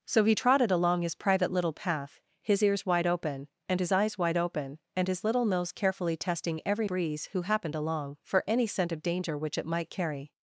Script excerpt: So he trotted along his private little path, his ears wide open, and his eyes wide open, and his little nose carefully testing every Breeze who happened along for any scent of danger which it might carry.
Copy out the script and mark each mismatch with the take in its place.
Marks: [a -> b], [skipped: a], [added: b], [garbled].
So he trotted along his private little path, his ears wide open, and his eyes wide open, and his little nose carefully testing every Breeze who happened along for any scent of danger which it might carry.